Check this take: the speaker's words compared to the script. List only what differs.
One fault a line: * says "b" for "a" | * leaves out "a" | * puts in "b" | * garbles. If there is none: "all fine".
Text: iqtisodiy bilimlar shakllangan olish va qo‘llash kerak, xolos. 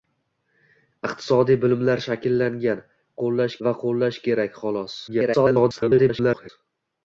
* says "qo‘llash" for "olish"
* garbles